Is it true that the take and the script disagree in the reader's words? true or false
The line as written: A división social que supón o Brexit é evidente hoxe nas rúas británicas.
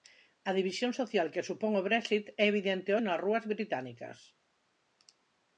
true